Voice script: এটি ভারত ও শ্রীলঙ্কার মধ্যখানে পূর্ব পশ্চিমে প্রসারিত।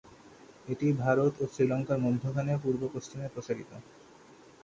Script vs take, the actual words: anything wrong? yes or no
no